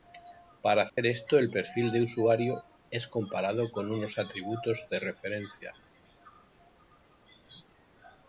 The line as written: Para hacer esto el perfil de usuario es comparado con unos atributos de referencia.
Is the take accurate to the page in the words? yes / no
yes